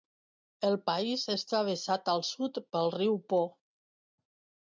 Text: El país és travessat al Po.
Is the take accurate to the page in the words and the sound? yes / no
no